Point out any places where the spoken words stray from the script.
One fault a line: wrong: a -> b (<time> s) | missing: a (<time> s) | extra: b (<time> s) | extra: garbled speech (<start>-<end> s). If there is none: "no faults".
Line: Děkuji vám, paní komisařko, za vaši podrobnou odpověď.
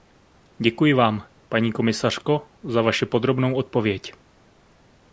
no faults